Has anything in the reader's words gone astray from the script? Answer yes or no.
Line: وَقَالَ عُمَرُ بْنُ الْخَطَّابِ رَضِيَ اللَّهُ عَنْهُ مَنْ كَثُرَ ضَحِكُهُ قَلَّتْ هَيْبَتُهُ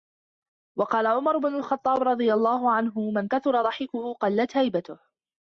no